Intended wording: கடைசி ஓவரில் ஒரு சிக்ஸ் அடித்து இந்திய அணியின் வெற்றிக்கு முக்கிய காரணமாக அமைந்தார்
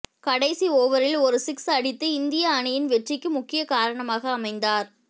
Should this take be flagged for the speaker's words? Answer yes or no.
no